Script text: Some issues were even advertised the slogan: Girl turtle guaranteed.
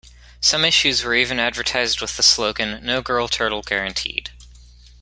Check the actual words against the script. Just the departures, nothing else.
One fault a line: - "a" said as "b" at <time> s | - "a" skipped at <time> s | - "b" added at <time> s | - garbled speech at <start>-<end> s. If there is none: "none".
- "with" added at 2.0 s
- "No" added at 2.8 s